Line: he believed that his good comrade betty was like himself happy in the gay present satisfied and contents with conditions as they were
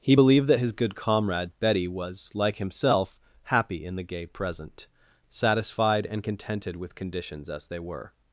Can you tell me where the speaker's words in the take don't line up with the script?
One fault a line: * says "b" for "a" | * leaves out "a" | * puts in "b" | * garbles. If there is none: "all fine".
* says "contented" for "contents"